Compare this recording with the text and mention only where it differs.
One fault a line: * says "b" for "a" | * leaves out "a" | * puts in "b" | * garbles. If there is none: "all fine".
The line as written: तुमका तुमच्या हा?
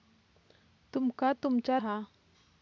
all fine